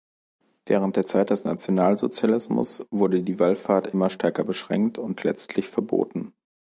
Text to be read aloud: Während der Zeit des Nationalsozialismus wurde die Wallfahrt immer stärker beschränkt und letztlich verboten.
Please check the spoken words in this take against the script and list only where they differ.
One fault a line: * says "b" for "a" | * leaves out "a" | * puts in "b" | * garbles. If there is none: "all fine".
all fine